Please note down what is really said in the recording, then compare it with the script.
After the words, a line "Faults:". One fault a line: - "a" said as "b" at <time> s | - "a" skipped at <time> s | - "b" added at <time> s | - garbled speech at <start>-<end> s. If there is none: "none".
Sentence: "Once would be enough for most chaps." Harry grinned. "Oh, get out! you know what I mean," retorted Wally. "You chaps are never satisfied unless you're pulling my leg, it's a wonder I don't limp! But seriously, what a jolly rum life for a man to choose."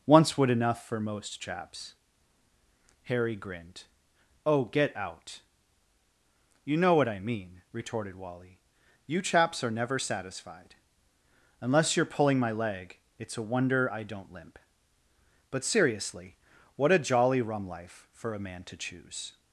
"Once would enough for most chaps." Harry grinned. "Oh, get out! you know what I mean," retorted Wally. "You chaps are never satisfied unless you're pulling my leg, it's a wonder I don't limp! But seriously, what a jolly rum life for a man to choose."
Faults:
- "be" skipped at 0.5 s